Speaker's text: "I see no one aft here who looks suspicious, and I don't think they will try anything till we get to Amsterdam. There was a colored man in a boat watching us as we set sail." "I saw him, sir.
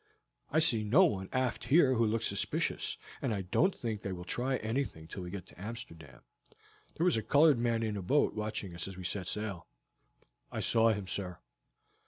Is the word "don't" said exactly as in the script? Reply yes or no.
yes